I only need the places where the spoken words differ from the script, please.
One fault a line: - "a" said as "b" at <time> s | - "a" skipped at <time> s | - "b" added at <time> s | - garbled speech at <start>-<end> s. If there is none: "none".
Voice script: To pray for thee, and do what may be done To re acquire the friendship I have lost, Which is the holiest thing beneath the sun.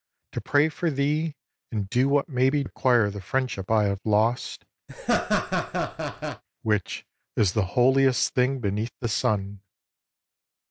- "done To re" skipped at 2.6 s